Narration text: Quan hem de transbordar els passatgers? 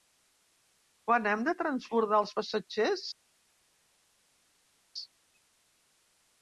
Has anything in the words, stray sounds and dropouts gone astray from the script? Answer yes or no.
no